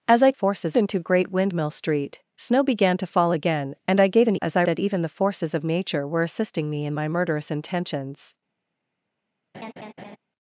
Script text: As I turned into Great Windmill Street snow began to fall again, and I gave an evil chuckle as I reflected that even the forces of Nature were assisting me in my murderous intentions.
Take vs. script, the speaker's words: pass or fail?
fail